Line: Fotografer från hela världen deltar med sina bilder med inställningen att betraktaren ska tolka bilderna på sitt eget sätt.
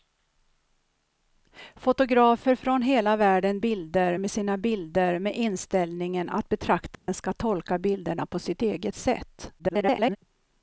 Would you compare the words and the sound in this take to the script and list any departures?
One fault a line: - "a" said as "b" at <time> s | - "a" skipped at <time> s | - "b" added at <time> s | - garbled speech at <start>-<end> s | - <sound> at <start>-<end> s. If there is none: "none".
- "deltar" said as "bilder" at 3.6 s
- dropout at 6.9-7.1 s
- garbled speech at 9.6-10.2 s